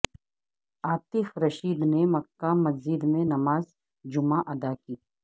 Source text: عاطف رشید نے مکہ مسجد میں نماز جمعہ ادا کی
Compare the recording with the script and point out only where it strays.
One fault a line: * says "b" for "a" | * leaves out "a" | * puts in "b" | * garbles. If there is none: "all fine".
all fine